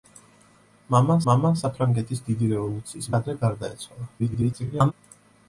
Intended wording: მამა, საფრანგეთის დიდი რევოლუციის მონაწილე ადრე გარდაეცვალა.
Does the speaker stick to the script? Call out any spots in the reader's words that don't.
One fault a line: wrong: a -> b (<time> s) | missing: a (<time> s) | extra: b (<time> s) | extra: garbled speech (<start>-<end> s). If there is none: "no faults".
extra: მამა (1.3 s)
missing: მონაწილე (3.1 s)
extra: garbled speech (4.2-4.9 s)